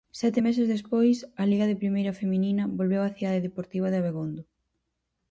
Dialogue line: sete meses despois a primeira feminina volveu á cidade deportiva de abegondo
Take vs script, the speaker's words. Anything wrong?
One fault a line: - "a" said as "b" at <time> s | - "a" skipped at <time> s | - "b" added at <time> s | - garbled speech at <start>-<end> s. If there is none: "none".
- "liga de" added at 1.5 s